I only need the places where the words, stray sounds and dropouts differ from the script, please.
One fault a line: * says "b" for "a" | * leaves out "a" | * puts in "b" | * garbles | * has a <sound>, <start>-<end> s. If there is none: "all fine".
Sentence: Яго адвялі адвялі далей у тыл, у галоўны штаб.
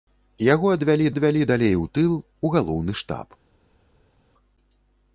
all fine